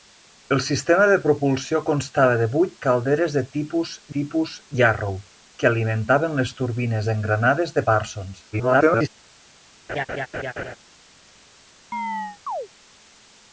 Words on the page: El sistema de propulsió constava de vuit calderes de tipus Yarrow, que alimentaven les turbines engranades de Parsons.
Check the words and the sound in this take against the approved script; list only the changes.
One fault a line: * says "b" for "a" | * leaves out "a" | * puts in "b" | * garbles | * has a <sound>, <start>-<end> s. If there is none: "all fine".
* puts in "tipus"
* garbles
* has a laugh, 9.9-10.8 s
* has a chirp, 11.9-12.7 s